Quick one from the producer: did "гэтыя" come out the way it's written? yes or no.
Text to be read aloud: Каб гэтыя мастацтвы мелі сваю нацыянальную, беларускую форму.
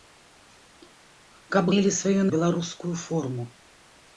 no